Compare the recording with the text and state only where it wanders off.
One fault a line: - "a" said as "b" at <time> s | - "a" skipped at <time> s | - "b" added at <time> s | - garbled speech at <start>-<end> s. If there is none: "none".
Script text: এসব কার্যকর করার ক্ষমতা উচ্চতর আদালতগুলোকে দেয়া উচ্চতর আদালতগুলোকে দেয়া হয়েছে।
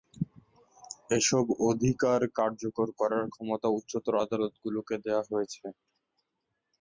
- "অধিকার" added at 1.7 s
- "উচ্চতর আদালতগুলোকে দেয়া" skipped at 5.2 s